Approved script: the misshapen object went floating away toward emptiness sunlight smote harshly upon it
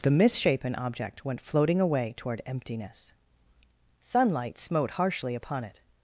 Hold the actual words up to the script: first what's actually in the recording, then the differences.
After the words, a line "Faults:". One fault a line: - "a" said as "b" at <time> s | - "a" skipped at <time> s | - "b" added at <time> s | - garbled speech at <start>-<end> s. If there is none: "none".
the misshapen object went floating away toward emptiness sunlight smote harshly upon it
Faults:
none